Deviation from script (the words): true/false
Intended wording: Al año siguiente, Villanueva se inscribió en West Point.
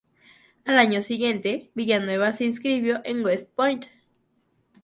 false